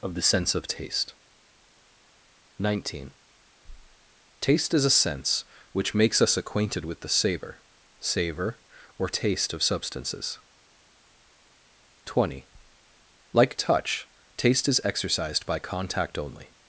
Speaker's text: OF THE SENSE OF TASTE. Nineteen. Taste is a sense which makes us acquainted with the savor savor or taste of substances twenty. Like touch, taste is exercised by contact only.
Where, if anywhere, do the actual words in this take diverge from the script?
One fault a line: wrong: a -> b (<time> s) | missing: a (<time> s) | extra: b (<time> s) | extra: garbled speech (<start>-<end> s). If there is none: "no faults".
no faults